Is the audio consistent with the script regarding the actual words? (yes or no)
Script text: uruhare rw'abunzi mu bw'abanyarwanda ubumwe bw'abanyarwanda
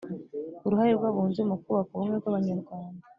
no